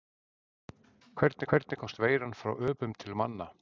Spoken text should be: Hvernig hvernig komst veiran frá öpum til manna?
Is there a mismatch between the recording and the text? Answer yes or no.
no